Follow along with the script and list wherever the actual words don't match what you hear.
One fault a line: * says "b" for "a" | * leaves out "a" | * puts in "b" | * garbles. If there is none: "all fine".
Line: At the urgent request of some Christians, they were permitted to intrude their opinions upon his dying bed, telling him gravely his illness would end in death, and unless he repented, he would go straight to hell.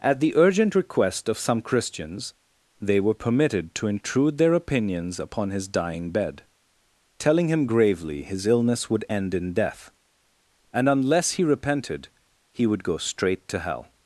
all fine